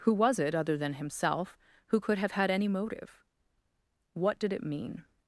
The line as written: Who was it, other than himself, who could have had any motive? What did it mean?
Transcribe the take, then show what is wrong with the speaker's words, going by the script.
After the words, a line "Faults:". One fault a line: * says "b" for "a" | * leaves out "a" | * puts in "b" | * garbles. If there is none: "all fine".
Who was it, other than himself, who could have had any motive? What did it mean?
Faults:
all fine